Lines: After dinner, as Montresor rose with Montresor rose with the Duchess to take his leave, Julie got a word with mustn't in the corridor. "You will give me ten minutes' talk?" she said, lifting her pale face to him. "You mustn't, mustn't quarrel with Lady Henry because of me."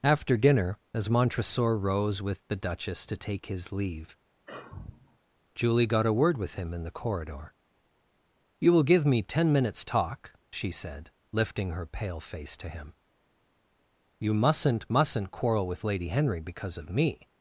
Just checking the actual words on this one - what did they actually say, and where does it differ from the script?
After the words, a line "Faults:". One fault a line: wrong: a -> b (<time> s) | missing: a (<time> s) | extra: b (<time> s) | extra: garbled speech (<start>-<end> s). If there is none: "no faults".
After dinner, as Montresor rose with the Duchess to take his leave, Julie got a word with him in the corridor. "You will give me ten minutes' talk?" she said, lifting her pale face to him. "You mustn't, mustn't quarrel with Lady Henry because of me."
Faults:
missing: Montresor rose with (2.4 s)
wrong: mustn't -> him (6.6 s)